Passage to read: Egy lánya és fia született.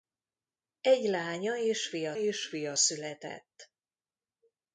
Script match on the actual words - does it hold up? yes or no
no